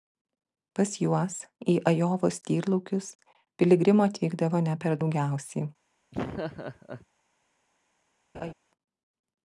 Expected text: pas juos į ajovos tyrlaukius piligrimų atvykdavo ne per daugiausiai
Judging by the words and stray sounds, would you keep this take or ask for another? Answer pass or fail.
fail